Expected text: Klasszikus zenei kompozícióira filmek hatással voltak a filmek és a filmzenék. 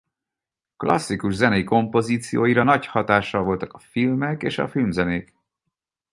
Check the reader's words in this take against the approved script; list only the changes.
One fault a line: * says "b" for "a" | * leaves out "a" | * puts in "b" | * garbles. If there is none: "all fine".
* says "nagy" for "filmek"